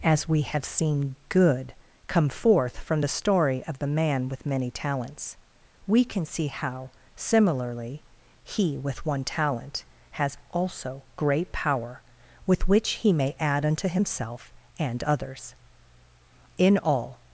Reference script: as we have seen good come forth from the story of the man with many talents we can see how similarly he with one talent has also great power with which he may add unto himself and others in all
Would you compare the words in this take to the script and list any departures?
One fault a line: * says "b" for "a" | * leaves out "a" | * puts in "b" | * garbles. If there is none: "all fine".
all fine